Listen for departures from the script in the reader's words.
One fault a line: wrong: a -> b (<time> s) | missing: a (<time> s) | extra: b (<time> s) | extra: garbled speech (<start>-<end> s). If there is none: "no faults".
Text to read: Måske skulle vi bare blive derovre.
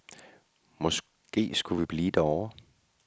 missing: bare (1.8 s)